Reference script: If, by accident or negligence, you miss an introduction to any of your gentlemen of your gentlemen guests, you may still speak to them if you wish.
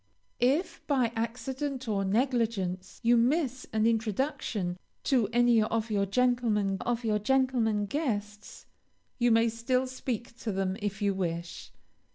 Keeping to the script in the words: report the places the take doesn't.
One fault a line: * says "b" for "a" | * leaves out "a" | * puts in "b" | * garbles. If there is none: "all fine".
all fine